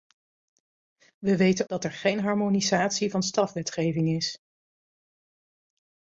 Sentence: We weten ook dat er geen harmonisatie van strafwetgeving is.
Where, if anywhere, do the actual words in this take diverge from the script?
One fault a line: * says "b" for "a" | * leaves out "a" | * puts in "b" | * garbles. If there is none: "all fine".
* leaves out "ook"